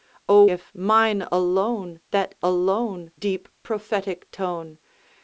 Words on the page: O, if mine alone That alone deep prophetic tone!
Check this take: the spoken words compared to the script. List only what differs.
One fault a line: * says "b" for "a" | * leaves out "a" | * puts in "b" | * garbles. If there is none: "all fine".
all fine